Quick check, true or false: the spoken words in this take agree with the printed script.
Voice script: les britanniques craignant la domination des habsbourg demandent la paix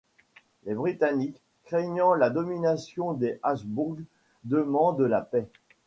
true